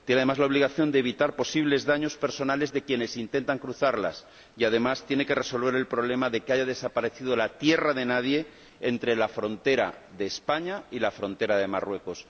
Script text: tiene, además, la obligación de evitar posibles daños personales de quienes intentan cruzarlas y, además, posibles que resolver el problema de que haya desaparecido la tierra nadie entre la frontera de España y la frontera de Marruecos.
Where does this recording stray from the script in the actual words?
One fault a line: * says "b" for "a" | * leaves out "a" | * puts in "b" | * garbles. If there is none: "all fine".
* says "tiene" for "posibles"
* puts in "de"